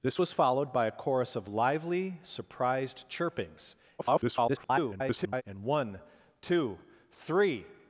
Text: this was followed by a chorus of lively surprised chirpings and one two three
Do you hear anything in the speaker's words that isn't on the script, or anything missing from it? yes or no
yes